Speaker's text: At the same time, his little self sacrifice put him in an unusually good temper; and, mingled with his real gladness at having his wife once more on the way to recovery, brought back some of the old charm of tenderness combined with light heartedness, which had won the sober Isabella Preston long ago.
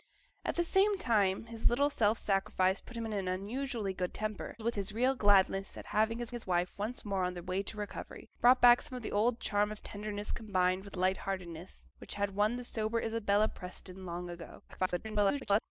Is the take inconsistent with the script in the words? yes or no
yes